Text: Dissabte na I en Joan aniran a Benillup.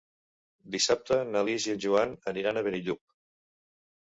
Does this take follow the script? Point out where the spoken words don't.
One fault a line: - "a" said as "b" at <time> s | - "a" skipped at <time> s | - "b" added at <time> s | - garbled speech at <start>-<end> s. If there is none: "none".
- "Lis" added at 1.5 s